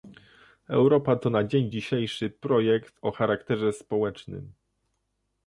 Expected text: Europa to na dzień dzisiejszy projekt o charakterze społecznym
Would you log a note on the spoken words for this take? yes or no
no